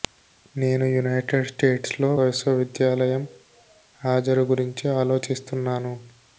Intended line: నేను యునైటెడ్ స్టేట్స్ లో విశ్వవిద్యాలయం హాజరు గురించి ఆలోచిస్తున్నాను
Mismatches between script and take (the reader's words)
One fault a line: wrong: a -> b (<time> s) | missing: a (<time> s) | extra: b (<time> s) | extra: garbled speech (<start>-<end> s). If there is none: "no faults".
no faults